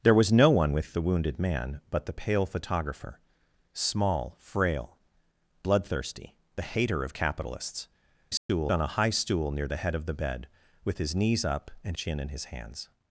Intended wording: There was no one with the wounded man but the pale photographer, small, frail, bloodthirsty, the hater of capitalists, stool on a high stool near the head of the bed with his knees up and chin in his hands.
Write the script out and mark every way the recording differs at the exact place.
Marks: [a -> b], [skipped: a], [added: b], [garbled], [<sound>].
There was no one with the wounded man but the pale photographer, small, frail, bloodthirsty, the hater of capitalists, stool [dropout] on a high stool near the head of the bed with his knees up and chin in his hands.